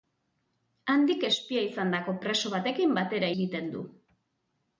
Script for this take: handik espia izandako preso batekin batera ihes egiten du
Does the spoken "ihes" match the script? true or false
false